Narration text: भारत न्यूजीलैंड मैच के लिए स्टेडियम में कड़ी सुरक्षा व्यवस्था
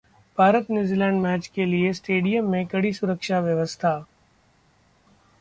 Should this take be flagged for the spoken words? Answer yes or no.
no